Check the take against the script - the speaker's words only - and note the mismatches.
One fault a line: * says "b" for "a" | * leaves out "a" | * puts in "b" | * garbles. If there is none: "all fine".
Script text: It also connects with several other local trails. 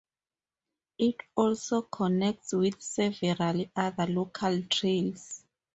all fine